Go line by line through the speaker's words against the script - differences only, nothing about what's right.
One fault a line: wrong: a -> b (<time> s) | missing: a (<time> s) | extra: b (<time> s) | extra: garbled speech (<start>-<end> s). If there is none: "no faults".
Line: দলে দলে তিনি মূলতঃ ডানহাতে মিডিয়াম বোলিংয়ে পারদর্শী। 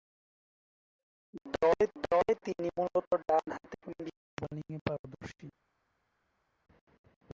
no faults